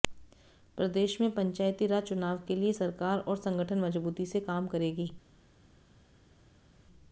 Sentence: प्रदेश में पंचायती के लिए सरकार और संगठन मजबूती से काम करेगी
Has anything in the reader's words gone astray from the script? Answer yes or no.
yes